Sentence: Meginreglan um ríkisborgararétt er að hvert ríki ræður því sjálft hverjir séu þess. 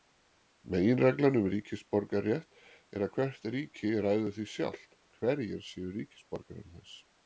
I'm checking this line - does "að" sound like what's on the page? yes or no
yes